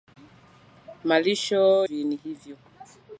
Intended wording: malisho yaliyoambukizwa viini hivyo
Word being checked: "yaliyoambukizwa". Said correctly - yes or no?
no